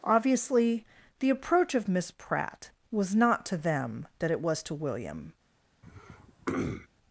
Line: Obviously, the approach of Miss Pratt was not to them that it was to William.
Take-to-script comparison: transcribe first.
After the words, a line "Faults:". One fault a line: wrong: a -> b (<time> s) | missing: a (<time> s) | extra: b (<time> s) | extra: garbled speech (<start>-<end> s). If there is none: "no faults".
Obviously, the approach of Miss Pratt was not to them that it was to William.
Faults:
no faults